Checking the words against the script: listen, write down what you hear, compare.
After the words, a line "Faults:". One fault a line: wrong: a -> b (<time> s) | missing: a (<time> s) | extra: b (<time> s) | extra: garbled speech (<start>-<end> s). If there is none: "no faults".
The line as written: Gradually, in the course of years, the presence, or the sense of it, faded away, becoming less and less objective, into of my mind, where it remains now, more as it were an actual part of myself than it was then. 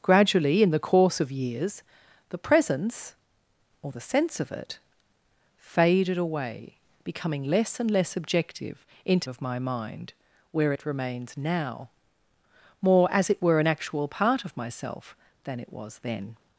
Gradually, in the course of years, the presence, or the sense of it, faded away, becoming less and less objective, into of my mind, where it remains now, more as it were an actual part of myself than it was then.
Faults:
no faults